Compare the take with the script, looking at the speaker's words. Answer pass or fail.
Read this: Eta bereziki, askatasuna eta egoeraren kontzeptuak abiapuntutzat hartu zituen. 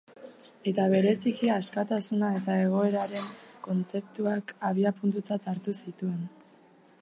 pass